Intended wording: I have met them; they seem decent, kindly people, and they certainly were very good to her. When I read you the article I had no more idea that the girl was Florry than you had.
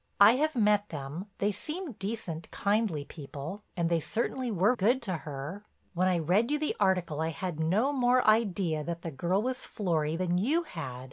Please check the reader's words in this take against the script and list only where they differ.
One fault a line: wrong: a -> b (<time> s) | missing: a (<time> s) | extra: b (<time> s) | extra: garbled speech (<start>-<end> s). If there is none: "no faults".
missing: very (4.7 s)